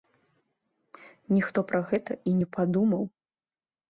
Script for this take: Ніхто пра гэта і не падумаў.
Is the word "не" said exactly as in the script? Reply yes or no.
yes